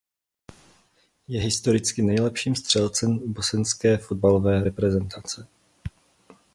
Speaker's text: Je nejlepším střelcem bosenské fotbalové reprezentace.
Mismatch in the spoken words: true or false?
true